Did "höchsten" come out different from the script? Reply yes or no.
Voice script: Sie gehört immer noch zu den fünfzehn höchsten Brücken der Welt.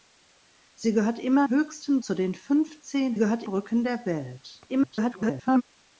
yes